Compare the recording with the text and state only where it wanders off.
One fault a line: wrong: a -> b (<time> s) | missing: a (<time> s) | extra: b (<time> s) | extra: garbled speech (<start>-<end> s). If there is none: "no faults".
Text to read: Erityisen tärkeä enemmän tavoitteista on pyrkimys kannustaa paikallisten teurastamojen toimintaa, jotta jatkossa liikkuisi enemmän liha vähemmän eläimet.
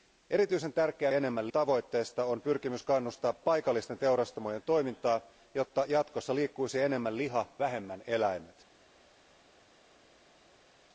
no faults